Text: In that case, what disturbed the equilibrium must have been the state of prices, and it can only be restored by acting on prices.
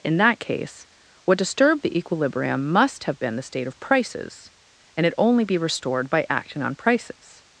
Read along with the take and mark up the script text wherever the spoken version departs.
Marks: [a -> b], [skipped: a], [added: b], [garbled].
In that case, what disturbed the equilibrium must have been the state of prices, and it [skipped: can] only be restored by acting on prices.